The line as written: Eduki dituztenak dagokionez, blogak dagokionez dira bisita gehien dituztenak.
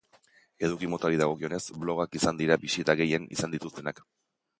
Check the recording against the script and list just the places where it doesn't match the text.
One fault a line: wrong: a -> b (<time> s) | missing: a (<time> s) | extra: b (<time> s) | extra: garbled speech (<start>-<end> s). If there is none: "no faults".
wrong: dituztenak -> motari (0.9 s)
wrong: dagokionez -> izan (2.2 s)
extra: izan (3.4 s)